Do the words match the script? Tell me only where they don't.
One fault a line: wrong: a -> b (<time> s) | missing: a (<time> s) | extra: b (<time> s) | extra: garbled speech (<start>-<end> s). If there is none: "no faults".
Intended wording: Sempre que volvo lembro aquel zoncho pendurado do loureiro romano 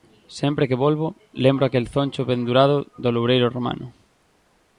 no faults